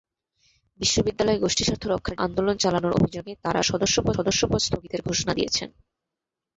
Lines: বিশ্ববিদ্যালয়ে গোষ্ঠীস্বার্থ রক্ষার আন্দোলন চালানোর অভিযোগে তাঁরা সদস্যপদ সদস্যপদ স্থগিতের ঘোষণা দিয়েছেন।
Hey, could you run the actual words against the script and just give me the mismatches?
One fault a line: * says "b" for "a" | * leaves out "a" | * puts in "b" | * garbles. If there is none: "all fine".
all fine